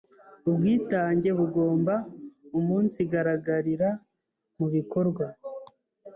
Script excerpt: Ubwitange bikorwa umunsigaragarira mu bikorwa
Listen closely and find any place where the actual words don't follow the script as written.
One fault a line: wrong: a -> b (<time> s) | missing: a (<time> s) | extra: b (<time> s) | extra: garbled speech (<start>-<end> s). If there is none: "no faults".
wrong: bikorwa -> bugomba (1.4 s)